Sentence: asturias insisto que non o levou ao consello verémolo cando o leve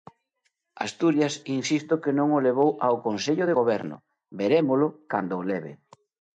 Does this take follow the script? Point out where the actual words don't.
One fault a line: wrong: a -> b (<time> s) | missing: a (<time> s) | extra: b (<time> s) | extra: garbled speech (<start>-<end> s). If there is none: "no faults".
extra: de goberno (3.4 s)